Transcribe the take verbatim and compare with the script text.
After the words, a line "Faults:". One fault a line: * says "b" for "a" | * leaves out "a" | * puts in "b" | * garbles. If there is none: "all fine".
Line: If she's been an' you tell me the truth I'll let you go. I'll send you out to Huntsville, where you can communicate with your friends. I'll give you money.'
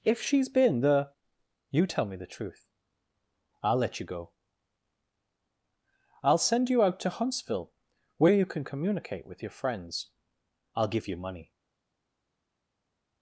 If she's been the' you tell me the truth I'll let you go. I'll send you out to Huntsville, where you can communicate with your friends. I'll give you money.'
Faults:
* says "the" for "an"